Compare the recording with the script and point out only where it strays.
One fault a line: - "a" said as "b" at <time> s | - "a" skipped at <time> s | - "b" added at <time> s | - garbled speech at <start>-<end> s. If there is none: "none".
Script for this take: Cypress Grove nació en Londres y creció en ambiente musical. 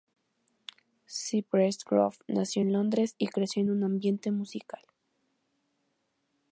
- "un" added at 3.7 s